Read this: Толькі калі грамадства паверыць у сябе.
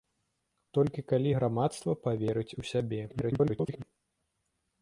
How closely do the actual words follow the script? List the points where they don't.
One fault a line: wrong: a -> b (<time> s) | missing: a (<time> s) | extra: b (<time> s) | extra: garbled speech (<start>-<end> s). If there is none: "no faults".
extra: garbled speech (3.1-3.8 s)